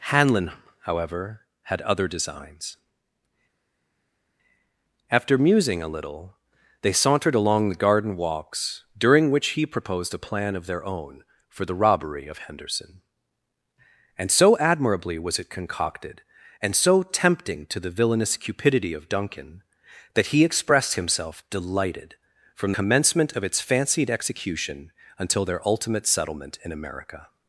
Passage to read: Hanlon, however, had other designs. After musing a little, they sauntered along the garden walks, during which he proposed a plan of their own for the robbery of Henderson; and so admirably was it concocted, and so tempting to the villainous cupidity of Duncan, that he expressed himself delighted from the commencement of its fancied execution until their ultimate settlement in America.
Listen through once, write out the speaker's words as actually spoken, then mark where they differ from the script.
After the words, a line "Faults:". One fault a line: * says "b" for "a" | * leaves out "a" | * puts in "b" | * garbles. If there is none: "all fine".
Hanlon, however, had other designs. After musing a little, they sauntered along the garden walks, during which he proposed a plan of their own for the robbery of Henderson; and so admirably was it concocted, and so tempting to the villainous cupidity of Duncan, that he expressed himself delighted from commencement of its fancied execution until their ultimate settlement in America.
Faults:
* leaves out "the"